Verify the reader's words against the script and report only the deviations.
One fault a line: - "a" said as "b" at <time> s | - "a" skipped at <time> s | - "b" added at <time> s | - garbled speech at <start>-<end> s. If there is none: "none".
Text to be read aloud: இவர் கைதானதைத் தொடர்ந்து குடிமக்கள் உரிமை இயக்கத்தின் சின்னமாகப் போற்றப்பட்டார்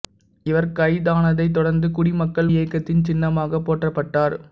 - "உரிமை" skipped at 2.5 s